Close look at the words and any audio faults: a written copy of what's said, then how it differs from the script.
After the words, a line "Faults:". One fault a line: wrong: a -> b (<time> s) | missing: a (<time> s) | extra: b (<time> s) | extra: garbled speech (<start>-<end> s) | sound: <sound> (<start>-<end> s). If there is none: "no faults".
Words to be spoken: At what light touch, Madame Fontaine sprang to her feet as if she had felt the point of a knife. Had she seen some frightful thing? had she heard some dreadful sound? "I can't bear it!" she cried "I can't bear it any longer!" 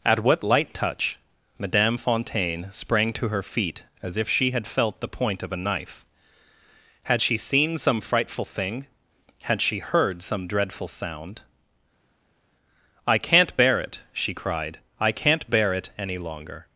At what light touch, Madame Fontaine sprang to her feet as if she had felt the point of a knife. Had she seen some frightful thing? had she heard some dreadful sound? "I can't bear it!" she cried "I can't bear it any longer!"
Faults:
no faults